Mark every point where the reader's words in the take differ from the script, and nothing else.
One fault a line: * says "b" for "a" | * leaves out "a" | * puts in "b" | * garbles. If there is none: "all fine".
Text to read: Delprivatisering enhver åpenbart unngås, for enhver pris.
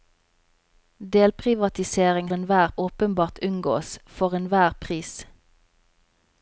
all fine